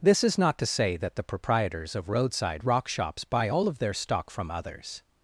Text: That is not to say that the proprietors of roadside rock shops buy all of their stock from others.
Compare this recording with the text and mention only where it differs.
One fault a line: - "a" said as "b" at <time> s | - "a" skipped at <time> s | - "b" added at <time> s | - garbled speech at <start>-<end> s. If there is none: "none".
- "That" said as "This" at 0.0 s